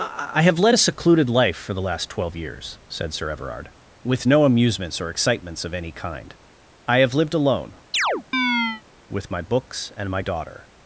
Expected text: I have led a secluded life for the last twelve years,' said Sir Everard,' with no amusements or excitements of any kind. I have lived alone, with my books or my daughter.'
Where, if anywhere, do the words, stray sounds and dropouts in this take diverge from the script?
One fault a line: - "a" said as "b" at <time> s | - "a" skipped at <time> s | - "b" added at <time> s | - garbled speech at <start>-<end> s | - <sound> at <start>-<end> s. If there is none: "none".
- chirp at 7.9-8.8 s
- "or" said as "and" at 10.0 s